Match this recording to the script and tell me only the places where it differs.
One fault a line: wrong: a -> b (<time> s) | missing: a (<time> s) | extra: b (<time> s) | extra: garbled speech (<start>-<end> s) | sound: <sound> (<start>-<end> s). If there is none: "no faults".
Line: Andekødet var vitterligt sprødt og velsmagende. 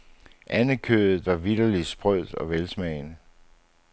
no faults